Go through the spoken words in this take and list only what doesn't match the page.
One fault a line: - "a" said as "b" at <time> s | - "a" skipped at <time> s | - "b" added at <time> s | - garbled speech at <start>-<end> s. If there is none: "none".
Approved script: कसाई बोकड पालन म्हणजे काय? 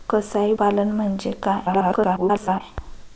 - "बोकड" skipped at 0.5 s
- garbled speech at 1.6-2.6 s